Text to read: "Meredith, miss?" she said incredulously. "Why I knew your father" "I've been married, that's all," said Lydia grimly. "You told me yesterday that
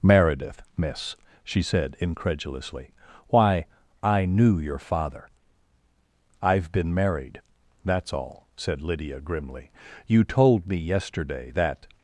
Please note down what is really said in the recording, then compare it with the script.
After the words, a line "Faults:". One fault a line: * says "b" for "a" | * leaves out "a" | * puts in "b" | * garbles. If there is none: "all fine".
"Meredith, miss?" she said incredulously. "Why I knew your father" "I've been married, that's all," said Lydia grimly. "You told me yesterday that
Faults:
all fine